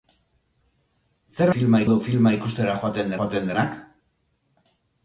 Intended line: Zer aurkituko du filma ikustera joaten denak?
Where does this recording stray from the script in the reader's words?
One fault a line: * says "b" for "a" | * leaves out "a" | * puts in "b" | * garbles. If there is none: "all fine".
* says "filma" for "aurkituko"
* puts in "joaten"